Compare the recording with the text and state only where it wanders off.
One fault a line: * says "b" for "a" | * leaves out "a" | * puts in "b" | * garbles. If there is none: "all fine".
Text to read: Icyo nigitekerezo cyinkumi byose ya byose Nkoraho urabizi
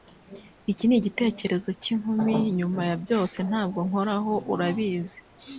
* says "Iki" for "Icyo"
* says "nyuma" for "byose"
* puts in "Ntabwo"